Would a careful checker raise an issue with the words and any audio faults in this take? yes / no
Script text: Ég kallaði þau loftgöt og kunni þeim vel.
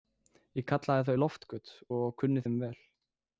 no